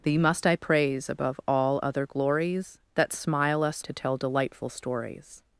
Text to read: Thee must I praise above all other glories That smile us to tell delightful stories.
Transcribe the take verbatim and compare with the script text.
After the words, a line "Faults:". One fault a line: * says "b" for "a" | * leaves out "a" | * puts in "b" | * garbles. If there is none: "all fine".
Thee must I praise above all other glories That smile us to tell delightful stories.
Faults:
all fine